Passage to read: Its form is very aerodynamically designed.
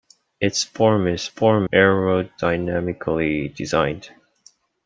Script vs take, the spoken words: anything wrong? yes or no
yes